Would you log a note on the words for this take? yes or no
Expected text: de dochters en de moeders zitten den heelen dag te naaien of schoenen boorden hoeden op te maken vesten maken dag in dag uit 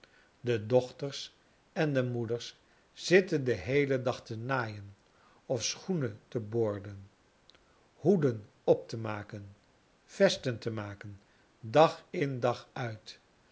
yes